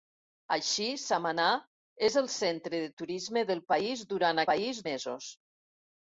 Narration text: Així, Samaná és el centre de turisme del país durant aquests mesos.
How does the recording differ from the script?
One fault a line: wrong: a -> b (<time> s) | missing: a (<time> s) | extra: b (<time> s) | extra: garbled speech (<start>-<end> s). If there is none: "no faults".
wrong: aquests -> país (4.5 s)